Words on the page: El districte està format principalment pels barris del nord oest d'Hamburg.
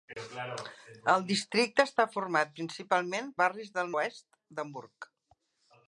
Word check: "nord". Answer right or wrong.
wrong